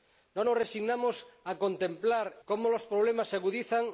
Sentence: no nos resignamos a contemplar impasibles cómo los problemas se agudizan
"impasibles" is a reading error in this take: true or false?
true